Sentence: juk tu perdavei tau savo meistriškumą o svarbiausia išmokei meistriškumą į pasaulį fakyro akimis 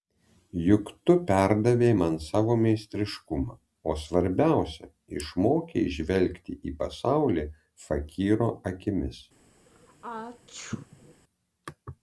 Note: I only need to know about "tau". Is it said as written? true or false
false